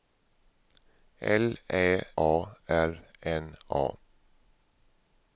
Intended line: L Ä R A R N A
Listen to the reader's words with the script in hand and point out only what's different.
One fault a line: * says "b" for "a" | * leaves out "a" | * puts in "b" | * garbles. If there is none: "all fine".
* leaves out "R"